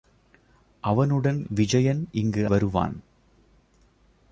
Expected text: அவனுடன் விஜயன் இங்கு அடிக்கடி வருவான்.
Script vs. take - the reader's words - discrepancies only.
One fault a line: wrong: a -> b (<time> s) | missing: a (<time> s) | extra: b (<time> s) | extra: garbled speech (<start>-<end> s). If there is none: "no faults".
missing: அடிக்கடி (2.5 s)